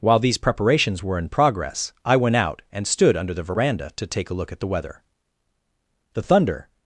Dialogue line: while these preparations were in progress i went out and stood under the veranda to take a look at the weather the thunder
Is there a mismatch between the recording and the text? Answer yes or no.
no